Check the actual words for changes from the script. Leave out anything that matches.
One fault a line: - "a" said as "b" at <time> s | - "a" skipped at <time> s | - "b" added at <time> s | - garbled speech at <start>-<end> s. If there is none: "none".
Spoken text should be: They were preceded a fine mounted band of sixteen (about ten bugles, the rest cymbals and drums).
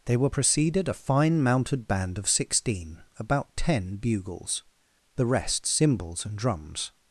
none